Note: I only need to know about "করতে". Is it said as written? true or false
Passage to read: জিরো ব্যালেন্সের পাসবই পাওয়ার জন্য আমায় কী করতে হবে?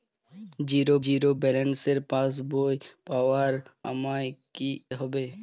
false